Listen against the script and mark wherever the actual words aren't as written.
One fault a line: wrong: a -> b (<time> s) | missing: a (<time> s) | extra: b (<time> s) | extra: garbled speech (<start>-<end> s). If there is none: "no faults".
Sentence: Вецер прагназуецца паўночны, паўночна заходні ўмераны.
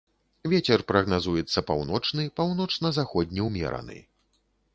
no faults